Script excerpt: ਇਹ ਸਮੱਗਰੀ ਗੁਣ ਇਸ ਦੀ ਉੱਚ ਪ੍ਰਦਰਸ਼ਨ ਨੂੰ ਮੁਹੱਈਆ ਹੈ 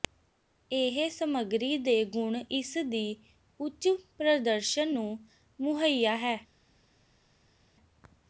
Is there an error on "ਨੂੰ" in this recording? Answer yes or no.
no